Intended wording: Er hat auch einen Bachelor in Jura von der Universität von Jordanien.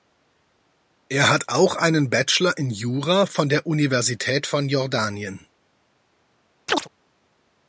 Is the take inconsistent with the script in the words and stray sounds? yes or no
yes